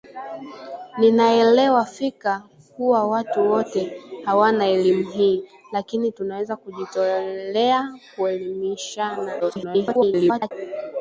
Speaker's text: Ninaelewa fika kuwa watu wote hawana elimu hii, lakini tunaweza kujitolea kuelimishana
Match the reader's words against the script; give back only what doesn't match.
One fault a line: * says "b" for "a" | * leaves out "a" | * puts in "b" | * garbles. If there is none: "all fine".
* garbles